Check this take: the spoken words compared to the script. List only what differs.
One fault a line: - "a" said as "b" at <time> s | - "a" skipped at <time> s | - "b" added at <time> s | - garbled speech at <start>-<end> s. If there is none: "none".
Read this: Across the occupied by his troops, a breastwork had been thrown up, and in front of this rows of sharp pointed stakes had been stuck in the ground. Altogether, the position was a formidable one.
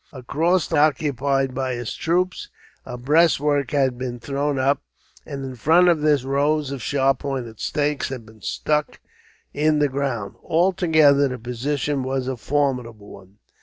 none